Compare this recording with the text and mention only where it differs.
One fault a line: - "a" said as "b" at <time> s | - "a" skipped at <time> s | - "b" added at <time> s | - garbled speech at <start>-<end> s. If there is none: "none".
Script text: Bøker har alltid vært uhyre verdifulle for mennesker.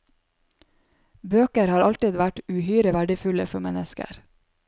none